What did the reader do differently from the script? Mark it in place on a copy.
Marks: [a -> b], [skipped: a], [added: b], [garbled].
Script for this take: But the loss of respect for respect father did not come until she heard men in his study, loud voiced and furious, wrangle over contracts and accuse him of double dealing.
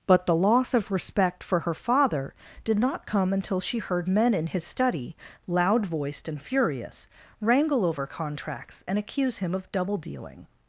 But the loss of respect for [respect -> her] father did not come until she heard men in his study, loud voiced and furious, wrangle over contracts and accuse him of double dealing.